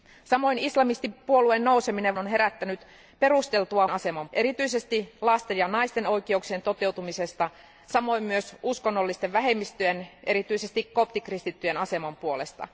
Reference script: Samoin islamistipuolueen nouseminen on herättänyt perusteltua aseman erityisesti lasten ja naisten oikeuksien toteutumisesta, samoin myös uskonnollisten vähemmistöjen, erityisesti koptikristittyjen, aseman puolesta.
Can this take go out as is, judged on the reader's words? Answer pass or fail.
pass